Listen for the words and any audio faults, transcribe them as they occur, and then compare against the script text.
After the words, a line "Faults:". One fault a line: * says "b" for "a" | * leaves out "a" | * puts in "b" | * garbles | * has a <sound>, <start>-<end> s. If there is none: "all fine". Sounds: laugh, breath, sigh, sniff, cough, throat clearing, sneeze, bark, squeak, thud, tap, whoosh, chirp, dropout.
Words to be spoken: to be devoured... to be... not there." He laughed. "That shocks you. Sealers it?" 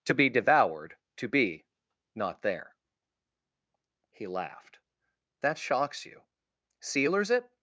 to be devoured... to be... not there." He laughed. "That shocks you. Sealers it?"
Faults:
all fine